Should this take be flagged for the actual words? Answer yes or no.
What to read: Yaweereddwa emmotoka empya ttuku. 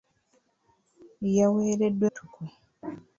yes